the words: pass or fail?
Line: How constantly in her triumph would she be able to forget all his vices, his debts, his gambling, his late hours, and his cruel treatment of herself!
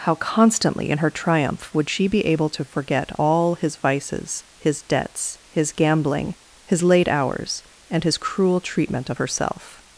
pass